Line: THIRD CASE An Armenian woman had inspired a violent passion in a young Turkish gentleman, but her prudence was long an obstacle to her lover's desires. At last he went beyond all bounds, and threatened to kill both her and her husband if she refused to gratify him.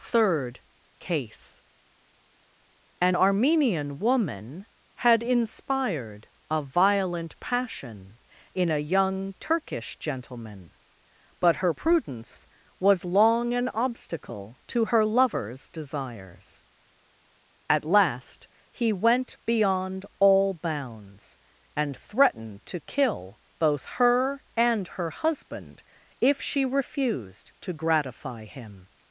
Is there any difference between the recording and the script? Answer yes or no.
no